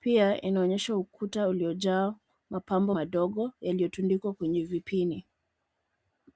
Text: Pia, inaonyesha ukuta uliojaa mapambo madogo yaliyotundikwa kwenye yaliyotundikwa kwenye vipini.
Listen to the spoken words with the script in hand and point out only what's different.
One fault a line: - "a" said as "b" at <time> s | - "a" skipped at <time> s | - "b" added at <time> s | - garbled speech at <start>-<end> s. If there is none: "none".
- "yaliyotundikwa kwenye" skipped at 4.6 s